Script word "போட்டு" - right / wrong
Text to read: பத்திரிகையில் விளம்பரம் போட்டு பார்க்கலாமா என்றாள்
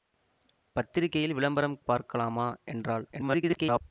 wrong